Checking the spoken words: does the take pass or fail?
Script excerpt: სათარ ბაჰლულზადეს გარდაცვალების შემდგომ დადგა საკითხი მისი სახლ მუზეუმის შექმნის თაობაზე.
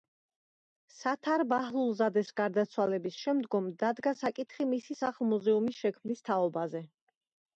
pass